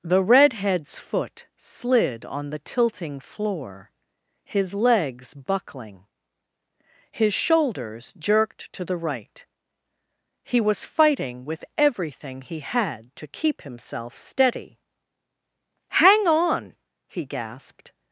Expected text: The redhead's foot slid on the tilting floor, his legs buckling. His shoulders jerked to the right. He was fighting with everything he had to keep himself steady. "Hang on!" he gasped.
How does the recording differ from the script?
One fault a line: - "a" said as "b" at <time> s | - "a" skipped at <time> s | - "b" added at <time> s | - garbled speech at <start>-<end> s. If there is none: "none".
none